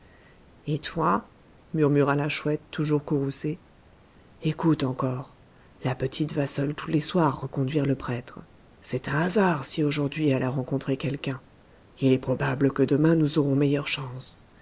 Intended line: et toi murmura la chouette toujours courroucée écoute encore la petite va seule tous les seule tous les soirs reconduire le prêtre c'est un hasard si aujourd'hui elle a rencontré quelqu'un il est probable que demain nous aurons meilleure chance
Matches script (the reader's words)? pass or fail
fail